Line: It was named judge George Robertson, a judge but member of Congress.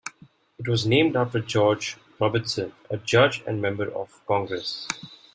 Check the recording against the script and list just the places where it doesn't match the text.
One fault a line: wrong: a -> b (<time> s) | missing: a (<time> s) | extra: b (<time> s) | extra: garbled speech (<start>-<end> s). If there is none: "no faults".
wrong: judge -> after (1.1 s)
wrong: but -> and (3.5 s)